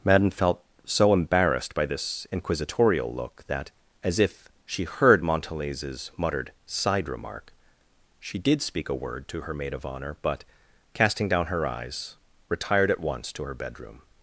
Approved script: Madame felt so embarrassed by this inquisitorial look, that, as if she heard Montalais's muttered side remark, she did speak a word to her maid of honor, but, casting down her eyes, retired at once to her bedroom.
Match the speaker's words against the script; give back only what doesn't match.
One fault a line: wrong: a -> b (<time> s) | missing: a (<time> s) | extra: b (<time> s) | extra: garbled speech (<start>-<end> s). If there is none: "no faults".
no faults